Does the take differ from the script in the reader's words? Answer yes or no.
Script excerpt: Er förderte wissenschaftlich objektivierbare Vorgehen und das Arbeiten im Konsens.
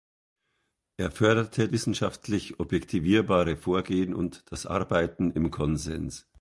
no